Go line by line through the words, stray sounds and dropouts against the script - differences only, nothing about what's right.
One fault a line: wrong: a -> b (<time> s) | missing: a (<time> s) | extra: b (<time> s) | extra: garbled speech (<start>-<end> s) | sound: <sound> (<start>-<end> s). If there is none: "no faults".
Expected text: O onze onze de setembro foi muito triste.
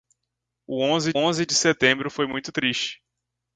no faults